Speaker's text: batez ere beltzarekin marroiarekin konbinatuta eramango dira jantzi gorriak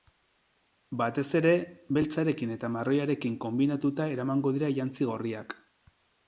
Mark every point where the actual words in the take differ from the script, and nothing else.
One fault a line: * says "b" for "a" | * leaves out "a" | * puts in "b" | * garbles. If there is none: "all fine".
* puts in "eta"